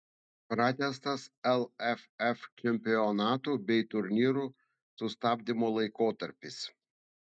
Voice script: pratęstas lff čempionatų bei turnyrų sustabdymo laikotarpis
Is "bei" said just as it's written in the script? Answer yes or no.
yes